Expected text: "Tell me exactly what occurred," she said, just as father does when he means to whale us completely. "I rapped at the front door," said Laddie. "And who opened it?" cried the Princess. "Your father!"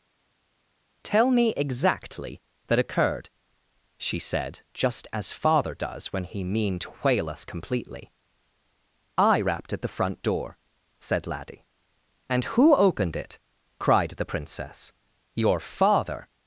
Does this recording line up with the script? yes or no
no